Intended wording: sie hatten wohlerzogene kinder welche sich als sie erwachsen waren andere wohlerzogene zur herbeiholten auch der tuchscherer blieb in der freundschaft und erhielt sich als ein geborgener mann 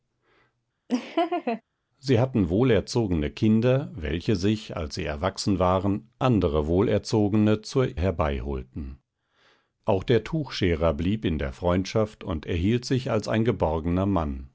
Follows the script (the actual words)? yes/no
yes